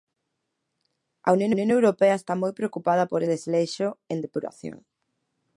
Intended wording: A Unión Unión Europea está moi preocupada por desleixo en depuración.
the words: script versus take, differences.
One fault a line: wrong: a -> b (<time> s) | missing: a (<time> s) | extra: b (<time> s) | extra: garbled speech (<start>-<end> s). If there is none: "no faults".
no faults